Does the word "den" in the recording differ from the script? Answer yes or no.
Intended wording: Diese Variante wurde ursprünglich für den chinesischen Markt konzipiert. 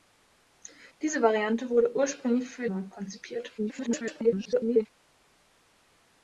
yes